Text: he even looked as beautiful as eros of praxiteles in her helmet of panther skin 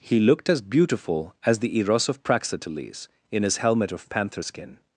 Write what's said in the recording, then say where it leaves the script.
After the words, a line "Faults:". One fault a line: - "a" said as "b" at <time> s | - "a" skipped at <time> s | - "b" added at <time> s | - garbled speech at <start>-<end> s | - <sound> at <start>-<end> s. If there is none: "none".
he looked as beautiful as the eros of praxiteles in his helmet of panther skin
Faults:
- "even" skipped at 0.2 s
- "the" added at 1.6 s
- "her" said as "his" at 3.4 s